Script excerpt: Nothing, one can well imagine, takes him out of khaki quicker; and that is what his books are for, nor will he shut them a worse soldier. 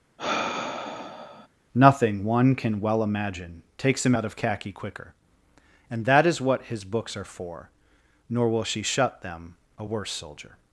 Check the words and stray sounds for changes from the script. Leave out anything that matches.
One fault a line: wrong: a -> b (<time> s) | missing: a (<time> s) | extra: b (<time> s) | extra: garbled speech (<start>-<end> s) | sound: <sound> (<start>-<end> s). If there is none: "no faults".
sound: sigh (0.2-1.5 s)
wrong: he -> she (8.6 s)